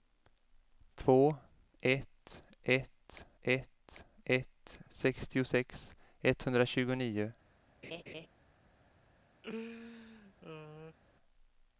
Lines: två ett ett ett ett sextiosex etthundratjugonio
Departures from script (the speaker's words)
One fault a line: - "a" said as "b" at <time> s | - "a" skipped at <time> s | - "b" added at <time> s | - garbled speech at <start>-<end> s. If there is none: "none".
none